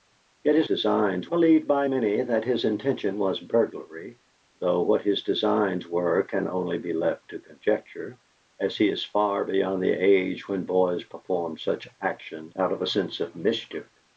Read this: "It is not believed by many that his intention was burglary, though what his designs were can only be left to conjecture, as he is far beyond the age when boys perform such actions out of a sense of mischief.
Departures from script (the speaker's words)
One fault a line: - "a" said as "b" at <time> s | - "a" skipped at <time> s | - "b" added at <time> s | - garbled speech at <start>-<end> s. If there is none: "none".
- "not" said as "designs" at 0.6 s